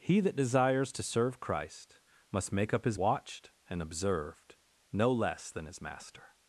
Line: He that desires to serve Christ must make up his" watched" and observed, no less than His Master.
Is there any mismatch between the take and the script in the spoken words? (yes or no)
no